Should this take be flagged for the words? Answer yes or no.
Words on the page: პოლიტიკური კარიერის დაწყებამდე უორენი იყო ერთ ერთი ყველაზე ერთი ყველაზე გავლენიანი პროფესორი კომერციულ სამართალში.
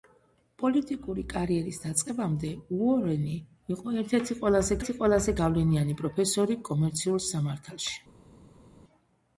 no